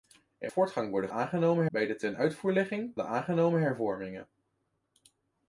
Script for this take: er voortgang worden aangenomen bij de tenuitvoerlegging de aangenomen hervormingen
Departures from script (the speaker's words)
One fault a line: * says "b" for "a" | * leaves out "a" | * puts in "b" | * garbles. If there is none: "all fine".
all fine